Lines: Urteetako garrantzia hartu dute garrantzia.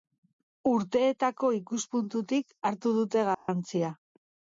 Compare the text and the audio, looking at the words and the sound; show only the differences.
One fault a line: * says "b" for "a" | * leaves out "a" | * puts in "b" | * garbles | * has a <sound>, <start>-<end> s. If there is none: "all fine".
* says "ikuspuntutik" for "garrantzia"
* has a dropout, 3.3-3.5 s